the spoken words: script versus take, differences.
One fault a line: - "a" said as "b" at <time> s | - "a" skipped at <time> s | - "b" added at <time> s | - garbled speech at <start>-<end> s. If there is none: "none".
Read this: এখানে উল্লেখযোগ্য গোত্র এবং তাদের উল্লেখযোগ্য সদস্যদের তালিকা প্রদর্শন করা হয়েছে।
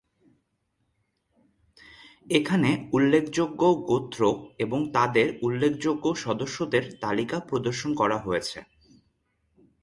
none